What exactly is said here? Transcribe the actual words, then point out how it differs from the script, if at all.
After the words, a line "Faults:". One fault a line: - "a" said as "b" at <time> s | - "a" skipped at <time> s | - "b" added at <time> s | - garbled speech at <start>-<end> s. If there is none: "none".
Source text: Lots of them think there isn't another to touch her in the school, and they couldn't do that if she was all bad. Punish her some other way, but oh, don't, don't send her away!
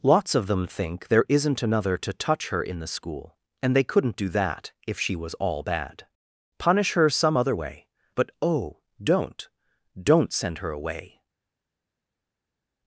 Lots of them think there isn't another to touch her in the school, and they couldn't do that if she was all bad. Punish her some other way, but oh, don't, don't send her away!
Faults:
none